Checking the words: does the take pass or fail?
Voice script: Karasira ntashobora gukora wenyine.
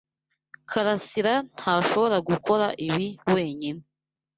fail